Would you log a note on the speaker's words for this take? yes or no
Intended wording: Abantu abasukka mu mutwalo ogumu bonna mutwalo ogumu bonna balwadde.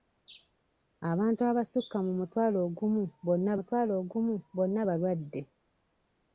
no